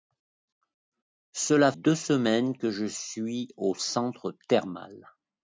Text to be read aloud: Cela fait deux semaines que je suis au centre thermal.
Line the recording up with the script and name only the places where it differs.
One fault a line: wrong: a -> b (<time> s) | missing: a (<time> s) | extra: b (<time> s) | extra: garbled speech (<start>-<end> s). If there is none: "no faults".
missing: fait (1.7 s)